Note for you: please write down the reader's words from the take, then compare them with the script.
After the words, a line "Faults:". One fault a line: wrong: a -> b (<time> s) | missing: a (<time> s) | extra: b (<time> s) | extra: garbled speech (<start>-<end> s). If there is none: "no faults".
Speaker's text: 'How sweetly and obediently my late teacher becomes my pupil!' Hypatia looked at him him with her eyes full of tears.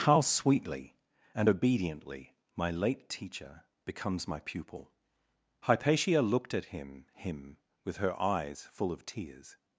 'How sweetly and obediently my late teacher becomes my pupil!' Hypatia looked at him him with her eyes full of tears.
Faults:
no faults